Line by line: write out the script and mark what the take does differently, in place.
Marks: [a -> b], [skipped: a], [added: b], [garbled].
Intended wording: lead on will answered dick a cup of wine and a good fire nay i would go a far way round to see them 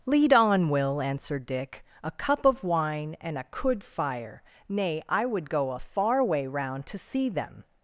lead on will answered dick a cup of wine and a [good -> could] fire nay i would go a far way round to see them